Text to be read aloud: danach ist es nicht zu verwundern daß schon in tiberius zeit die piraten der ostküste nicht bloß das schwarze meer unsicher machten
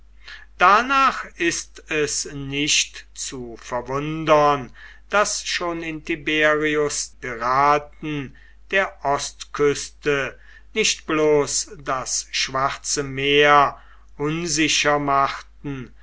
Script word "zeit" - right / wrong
wrong